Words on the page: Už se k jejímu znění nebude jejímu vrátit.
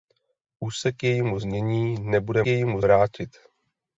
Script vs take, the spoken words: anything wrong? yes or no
no